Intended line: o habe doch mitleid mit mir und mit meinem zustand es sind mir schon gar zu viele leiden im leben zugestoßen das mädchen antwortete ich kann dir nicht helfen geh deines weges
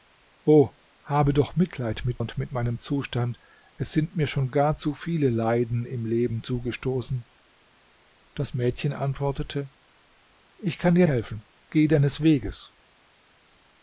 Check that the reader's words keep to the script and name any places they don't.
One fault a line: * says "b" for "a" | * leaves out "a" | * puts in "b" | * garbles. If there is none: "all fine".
* leaves out "mir"
* leaves out "nicht"